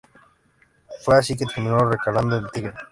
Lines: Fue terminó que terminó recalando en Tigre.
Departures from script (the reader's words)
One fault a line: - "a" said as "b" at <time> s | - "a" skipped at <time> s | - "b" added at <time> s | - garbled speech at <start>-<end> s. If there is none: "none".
- "terminó" said as "así" at 1.1 s